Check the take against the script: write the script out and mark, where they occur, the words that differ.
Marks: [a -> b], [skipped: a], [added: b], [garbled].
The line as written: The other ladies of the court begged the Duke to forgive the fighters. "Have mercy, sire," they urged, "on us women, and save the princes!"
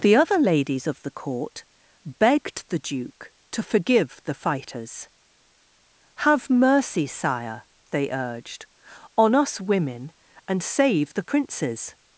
The other ladies of the court begged the Duke to forgive the fighters. "Have mercy, sire," they urged, "on us women, and save the princes!"